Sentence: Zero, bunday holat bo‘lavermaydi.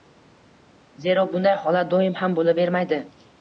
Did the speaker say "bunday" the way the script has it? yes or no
yes